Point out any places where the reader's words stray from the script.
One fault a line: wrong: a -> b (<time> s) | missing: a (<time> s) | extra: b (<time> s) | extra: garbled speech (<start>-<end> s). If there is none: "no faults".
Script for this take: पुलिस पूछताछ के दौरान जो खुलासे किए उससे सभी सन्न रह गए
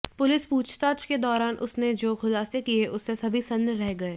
extra: उसने (1.6 s)